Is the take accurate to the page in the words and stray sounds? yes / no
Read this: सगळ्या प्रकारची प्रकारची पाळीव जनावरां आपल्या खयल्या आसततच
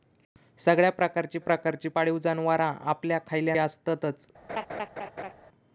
no